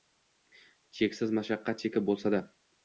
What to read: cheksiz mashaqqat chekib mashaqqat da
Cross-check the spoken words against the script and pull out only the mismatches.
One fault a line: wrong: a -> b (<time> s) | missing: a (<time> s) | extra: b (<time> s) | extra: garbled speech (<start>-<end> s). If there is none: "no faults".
wrong: mashaqqat -> bo‘lsa (2.1 s)